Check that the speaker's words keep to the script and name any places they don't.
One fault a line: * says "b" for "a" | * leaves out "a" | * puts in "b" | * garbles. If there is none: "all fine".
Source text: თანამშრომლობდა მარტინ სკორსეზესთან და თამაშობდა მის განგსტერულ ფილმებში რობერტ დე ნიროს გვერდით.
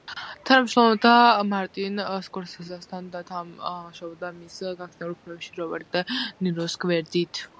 all fine